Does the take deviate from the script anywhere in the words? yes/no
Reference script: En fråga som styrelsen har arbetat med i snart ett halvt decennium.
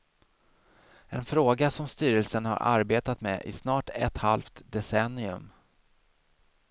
no